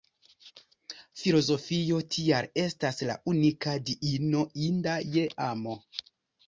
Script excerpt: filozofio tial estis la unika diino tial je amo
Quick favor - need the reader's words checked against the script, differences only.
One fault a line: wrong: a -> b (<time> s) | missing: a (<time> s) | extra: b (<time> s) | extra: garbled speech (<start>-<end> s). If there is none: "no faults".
wrong: estis -> estas (2.6 s)
wrong: tial -> inda (4.7 s)